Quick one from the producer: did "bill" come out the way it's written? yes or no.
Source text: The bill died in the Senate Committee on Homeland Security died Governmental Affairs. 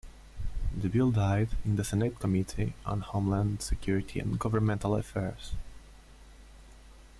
yes